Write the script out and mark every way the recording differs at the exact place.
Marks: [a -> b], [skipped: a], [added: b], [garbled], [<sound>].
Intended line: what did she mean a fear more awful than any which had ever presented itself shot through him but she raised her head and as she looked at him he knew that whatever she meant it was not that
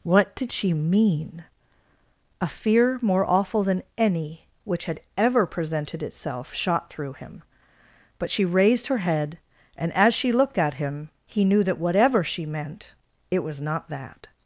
what did she mean a fear more awful than any which had ever presented itself shot through him but she raised her head and as she looked at him he knew that whatever she meant it was not that